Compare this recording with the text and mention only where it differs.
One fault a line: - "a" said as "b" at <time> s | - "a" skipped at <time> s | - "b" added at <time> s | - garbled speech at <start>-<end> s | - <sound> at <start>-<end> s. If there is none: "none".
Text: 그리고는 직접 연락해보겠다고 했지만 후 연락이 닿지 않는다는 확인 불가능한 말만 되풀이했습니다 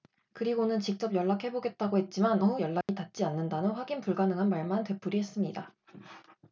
- dropout at 2.8-2.9 s